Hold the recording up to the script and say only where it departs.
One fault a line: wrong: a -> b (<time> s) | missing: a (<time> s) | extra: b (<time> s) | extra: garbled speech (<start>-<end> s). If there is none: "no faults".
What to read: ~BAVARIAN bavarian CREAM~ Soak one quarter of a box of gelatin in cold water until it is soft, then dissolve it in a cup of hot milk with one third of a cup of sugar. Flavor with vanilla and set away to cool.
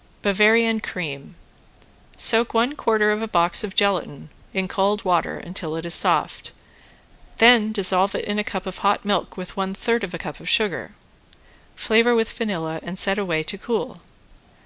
missing: bavarian (0.8 s)